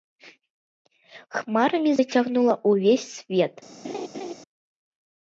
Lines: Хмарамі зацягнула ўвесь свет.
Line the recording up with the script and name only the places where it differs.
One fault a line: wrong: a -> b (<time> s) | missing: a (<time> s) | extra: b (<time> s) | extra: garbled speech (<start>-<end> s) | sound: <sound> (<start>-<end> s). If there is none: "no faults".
sound: laugh (3.8-4.3 s)